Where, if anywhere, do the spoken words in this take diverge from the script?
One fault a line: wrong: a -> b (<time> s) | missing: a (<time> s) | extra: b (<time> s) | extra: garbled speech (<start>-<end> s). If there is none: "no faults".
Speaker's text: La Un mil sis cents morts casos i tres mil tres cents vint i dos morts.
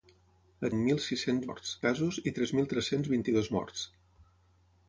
no faults